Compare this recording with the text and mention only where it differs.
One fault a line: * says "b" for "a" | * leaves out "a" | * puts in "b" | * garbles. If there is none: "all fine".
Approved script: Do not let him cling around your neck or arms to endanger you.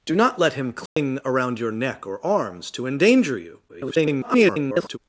* garbles